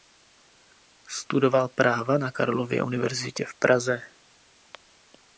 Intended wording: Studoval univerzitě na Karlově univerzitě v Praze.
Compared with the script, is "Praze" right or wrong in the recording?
right